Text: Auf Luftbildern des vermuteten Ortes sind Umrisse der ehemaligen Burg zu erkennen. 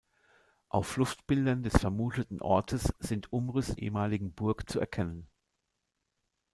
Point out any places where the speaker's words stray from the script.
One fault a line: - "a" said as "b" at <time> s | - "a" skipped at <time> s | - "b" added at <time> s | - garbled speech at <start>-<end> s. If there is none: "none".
- "der" skipped at 3.8 s